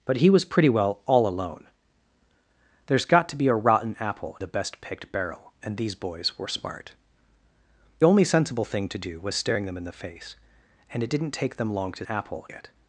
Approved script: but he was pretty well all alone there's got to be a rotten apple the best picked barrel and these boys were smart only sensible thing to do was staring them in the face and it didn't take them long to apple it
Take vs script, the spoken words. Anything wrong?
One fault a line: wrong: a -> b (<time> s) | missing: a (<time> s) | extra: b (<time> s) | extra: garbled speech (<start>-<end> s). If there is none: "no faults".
no faults